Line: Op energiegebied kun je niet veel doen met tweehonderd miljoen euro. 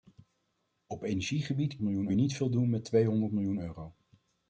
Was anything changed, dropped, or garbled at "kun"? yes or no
yes